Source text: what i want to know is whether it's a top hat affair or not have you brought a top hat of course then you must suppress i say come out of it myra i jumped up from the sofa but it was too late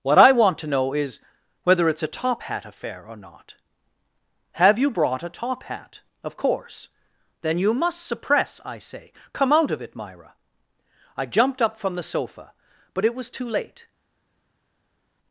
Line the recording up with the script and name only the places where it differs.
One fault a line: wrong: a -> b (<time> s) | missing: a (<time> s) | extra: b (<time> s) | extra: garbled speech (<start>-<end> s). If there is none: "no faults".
no faults